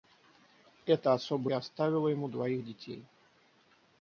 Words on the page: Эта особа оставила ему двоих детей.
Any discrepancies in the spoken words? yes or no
no